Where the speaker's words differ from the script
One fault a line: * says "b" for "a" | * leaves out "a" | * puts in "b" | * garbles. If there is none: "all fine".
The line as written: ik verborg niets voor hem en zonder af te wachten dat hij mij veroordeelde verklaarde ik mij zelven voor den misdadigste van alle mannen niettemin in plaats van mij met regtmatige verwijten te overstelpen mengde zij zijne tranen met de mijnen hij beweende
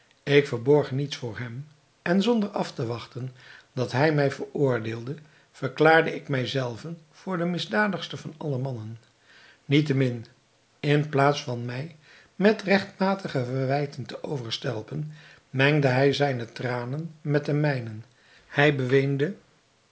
* says "hij" for "zij"